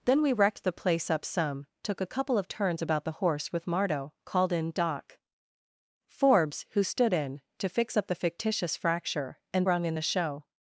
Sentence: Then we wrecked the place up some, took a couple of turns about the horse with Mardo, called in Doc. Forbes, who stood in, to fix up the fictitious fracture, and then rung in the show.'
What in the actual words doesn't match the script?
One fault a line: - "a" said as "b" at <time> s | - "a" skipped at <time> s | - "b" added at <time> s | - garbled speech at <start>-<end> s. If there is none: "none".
- "then" skipped at 9.7 s